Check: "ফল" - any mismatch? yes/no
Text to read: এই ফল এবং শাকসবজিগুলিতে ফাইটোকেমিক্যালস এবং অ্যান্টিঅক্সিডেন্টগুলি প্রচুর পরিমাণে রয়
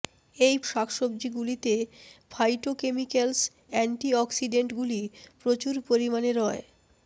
yes